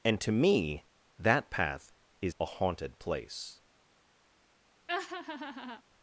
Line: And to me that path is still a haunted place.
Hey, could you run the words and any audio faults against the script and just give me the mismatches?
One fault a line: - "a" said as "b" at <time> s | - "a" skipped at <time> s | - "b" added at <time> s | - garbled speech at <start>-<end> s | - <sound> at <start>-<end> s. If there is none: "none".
- "still" skipped at 2.4 s
- laugh at 4.9-5.8 s